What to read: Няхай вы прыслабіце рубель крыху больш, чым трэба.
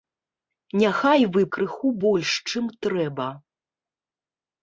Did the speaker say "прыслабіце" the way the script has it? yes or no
no